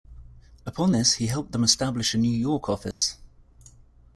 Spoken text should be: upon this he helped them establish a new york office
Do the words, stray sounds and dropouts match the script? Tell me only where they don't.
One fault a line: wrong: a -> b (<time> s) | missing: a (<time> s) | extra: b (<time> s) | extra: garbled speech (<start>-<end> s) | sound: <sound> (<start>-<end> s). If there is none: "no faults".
sound: dropout (2.9-3.0 s)